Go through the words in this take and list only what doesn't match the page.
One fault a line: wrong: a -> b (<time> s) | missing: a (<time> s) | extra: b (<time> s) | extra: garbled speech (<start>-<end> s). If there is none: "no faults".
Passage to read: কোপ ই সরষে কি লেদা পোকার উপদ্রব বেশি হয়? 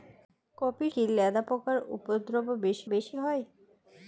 missing: সরষে (0.9 s)
extra: বেশি (2.9 s)